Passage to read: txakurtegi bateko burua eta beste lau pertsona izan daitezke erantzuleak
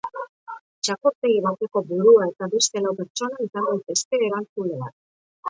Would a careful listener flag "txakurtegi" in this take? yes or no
no